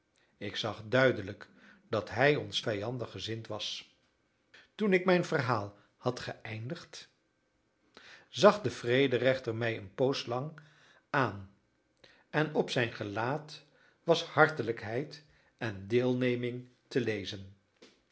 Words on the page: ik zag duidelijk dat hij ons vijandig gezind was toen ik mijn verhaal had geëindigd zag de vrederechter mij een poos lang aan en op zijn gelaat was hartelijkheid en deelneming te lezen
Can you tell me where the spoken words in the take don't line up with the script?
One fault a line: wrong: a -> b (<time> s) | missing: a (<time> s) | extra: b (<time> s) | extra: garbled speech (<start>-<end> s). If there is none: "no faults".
no faults